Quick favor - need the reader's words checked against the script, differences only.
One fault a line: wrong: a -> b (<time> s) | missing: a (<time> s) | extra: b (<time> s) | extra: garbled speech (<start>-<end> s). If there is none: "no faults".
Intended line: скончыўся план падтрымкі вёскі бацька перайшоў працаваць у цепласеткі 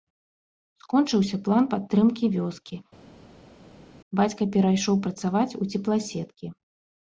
no faults